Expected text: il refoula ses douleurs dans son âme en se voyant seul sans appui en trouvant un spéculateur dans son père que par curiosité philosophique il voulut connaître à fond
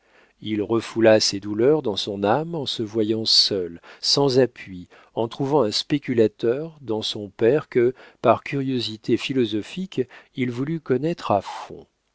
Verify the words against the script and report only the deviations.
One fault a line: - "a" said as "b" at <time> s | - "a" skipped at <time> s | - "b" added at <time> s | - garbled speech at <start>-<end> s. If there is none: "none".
none